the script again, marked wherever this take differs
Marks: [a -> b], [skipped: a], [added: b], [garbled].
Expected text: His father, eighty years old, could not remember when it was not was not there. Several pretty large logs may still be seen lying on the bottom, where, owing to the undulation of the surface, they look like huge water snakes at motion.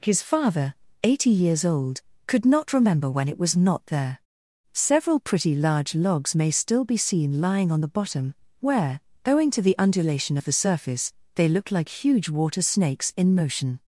His father, eighty years old, could not remember when it was not [skipped: was not] there. Several pretty large logs may still be seen lying on the bottom, where, owing to the undulation of the surface, they look like huge water snakes [at -> in] motion.